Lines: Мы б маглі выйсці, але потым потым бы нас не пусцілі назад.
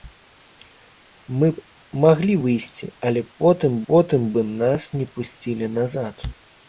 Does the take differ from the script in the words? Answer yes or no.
no